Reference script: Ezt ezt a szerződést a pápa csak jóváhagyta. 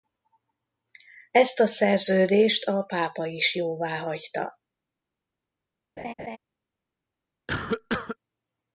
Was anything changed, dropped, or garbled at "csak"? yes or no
yes